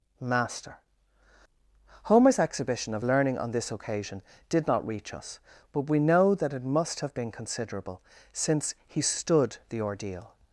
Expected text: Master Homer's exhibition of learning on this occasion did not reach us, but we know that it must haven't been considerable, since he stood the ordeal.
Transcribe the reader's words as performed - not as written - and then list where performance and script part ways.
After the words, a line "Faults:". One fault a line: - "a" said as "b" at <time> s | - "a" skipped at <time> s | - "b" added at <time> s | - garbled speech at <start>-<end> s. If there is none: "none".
Master Homer's exhibition of learning on this occasion did not reach us, but we know that it must have been considerable, since he stood the ordeal.
Faults:
- "haven't" said as "have" at 7.0 s